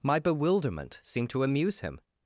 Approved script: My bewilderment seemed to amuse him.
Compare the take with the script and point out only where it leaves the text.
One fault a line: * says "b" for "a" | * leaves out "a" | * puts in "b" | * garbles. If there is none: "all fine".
all fine